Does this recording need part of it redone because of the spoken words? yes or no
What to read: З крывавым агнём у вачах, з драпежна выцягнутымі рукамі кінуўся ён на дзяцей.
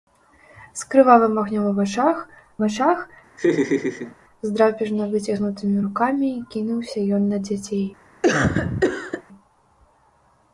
yes